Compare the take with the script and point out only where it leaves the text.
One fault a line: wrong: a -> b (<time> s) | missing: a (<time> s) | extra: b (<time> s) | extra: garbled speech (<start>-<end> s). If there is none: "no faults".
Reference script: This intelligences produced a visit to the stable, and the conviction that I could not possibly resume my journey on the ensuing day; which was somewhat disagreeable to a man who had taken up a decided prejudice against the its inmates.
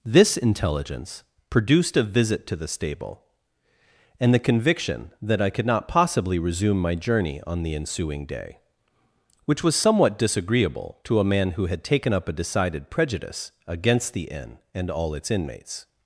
wrong: intelligences -> intelligence (0.3 s)
extra: inn and all (14.2 s)